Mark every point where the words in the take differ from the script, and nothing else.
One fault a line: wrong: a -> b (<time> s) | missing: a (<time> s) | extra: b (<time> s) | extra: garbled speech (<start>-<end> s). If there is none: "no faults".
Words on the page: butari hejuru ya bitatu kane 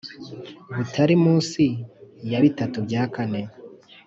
wrong: hejuru -> munsi (1.2 s)
extra: bya (2.9 s)